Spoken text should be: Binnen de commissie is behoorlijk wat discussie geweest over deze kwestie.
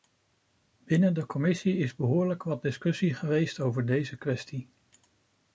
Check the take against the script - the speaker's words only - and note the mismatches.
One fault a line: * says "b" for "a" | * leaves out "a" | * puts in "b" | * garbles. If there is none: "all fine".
all fine